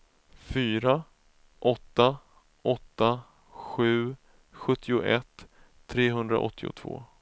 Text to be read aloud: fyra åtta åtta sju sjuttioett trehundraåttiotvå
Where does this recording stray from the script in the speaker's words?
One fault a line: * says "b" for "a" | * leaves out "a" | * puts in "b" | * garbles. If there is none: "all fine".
all fine